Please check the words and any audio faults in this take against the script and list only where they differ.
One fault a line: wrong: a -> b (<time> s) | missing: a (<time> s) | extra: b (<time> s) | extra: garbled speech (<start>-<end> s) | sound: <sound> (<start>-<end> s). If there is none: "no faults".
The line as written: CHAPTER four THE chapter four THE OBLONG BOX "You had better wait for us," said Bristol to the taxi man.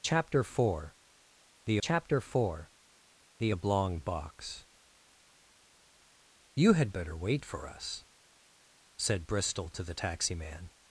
no faults